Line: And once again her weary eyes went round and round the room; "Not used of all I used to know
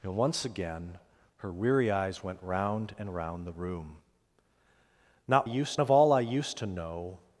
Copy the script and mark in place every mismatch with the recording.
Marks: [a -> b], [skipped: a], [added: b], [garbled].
And once again her weary eyes went round and round the room; "Not used of all I used to know